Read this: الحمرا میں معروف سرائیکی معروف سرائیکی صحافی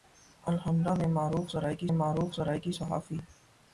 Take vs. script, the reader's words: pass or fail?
pass